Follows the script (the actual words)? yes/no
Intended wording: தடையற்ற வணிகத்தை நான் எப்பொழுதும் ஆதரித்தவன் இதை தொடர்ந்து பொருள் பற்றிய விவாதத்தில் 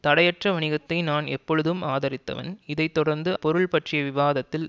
yes